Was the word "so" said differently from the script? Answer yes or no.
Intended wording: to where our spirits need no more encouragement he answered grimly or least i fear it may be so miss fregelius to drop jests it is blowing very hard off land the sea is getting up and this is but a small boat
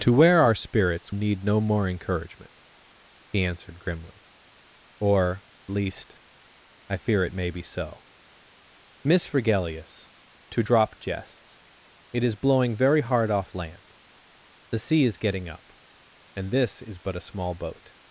no